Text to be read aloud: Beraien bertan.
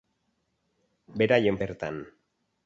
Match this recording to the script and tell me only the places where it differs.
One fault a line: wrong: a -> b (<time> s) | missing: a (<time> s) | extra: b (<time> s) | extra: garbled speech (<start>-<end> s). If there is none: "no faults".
no faults